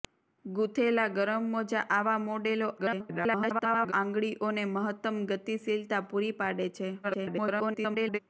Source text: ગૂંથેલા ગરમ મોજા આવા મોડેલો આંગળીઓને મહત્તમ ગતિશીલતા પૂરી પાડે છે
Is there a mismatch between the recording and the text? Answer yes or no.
yes